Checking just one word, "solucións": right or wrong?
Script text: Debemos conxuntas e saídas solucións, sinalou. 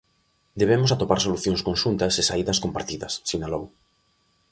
wrong